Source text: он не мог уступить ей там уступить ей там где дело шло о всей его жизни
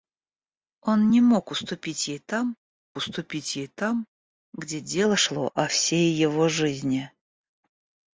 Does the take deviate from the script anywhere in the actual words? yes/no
no